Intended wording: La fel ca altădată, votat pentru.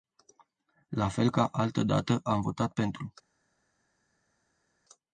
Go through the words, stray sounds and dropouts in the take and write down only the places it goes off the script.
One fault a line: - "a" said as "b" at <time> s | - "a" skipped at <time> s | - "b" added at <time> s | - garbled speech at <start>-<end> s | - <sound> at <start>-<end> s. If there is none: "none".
- "am" added at 2.2 s